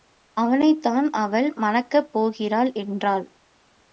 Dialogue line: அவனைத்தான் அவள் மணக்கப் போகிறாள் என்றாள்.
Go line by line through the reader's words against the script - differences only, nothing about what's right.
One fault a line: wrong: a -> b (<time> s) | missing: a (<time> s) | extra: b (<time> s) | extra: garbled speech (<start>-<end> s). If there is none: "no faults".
no faults